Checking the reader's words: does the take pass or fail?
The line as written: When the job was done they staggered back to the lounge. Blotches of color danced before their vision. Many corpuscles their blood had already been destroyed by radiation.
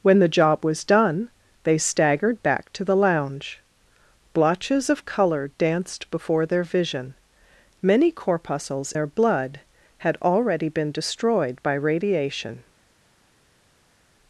pass